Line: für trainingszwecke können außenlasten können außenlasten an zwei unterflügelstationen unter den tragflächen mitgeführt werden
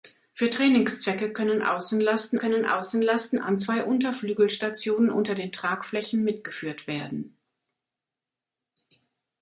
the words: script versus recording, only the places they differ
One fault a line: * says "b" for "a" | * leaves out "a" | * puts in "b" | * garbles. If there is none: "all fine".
all fine